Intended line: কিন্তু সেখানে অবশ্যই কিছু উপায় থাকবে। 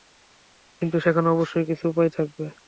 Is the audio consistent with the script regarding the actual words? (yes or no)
yes